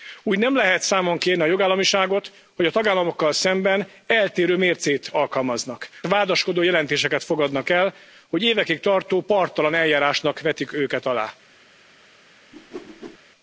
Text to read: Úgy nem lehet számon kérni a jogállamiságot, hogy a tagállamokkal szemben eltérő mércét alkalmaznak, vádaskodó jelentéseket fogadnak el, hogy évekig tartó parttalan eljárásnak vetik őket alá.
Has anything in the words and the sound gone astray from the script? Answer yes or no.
yes